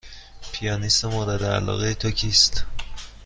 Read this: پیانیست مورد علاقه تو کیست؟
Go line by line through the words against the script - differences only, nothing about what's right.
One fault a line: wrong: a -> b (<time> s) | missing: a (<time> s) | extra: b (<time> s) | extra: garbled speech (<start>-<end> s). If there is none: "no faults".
no faults